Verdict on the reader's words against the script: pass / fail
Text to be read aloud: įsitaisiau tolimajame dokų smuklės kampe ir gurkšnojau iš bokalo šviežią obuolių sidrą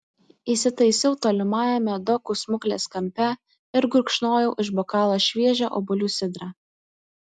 pass